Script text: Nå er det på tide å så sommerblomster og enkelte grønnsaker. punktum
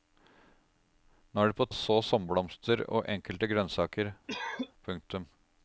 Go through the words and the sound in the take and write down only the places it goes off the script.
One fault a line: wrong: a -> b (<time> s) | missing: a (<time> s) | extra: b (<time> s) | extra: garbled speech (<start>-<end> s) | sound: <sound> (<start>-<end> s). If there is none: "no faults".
missing: tide (1.7 s)
sound: cough (4.3-4.7 s)